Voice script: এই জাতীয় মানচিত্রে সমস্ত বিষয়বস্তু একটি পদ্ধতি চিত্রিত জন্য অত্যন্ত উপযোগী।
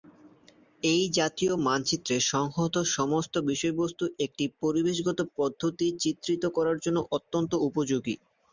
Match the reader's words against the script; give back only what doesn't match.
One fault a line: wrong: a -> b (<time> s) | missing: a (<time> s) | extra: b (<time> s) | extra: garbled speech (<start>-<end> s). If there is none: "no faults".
extra: সংহত (2.3 s)
extra: পরিবেশগত (4.6 s)
extra: করার (6.6 s)